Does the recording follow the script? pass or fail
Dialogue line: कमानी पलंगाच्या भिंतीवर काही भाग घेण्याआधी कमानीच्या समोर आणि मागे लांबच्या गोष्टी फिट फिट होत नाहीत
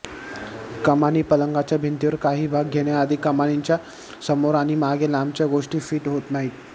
fail